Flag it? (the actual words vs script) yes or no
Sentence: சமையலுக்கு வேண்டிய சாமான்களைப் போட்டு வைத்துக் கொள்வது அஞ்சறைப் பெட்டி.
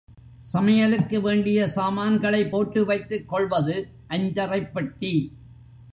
no